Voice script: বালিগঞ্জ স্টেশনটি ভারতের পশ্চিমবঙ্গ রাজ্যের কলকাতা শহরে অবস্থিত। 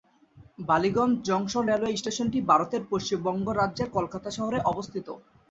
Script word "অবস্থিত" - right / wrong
right